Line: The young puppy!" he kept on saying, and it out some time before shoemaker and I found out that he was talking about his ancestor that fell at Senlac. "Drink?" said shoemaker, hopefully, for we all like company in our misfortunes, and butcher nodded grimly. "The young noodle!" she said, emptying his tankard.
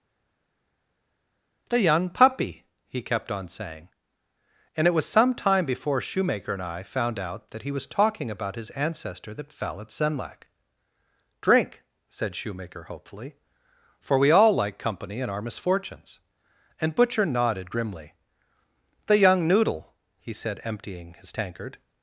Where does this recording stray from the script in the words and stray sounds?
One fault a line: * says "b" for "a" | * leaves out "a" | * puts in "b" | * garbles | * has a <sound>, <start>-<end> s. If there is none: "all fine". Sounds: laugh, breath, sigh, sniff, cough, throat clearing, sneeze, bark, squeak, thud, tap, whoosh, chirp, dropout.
* says "was" for "out"
* says "he" for "she"